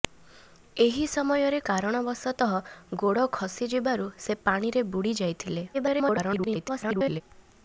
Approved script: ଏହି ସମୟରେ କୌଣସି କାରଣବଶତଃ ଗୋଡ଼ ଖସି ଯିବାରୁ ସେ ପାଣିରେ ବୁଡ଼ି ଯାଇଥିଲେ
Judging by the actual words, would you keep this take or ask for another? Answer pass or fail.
fail